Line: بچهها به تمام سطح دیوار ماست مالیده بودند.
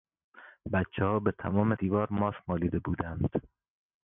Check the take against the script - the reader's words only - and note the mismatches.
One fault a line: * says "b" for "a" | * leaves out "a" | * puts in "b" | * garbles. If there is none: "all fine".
* leaves out "سطح"